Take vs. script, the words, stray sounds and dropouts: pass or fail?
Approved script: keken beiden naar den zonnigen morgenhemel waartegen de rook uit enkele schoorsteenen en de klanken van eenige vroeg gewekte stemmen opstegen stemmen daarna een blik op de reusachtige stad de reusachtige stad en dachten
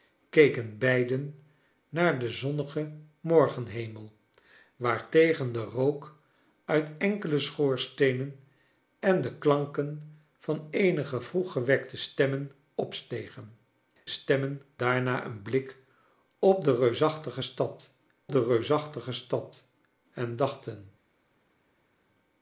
pass